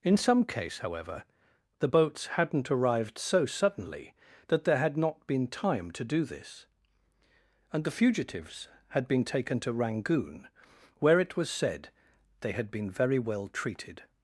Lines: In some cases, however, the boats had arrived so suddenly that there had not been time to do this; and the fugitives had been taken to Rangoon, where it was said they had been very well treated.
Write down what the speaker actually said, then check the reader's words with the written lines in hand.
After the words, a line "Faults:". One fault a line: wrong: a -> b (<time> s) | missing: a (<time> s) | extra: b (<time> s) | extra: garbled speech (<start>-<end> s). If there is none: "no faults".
In some case, however, the boats hadn't arrived so suddenly that there had not been time to do this; and the fugitives had been taken to Rangoon, where it was said they had been very well treated.
Faults:
wrong: cases -> case (0.5 s)
wrong: had -> hadn't (2.3 s)